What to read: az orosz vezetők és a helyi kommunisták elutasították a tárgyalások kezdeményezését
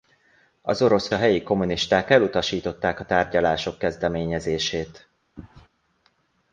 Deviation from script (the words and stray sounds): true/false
true